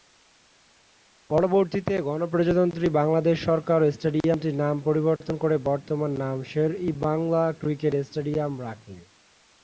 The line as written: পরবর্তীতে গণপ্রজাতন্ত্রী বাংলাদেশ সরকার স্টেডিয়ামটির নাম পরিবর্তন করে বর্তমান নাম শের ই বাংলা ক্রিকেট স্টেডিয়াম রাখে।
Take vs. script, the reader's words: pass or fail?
pass